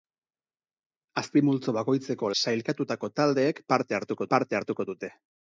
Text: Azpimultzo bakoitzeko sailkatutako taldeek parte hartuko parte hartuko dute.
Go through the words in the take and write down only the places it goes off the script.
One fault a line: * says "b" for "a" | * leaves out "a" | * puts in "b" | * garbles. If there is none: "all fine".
all fine